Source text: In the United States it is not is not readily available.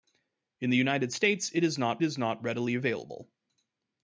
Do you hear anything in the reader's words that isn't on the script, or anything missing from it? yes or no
no